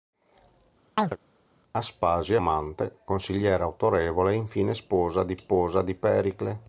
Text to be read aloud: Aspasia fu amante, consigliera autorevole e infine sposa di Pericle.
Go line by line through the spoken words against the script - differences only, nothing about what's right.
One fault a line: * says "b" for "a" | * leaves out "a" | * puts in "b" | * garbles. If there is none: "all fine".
* leaves out "fu"
* puts in "sposa di"